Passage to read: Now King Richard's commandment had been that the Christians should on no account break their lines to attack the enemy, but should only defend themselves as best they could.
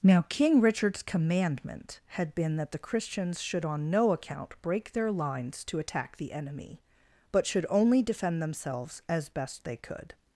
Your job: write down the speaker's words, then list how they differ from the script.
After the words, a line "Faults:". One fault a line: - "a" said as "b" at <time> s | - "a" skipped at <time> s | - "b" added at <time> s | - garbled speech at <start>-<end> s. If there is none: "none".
Now King Richard's commandment had been that the Christians should on no account break their lines to attack the enemy, but should only defend themselves as best they could.
Faults:
none